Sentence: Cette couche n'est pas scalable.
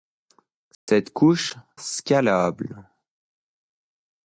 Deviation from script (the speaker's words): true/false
true